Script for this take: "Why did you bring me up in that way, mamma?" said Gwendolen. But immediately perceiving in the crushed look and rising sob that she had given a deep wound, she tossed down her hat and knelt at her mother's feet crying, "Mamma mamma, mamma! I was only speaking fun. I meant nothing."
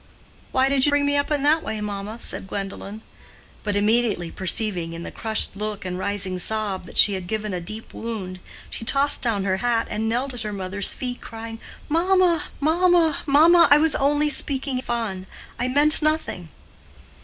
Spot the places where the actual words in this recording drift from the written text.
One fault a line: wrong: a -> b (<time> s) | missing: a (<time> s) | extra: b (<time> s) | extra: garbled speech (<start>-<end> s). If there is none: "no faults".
no faults